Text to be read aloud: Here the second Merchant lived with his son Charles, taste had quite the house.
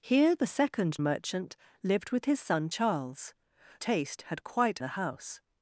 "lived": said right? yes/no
yes